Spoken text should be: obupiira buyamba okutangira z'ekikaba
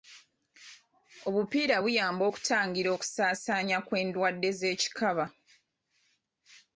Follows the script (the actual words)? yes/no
no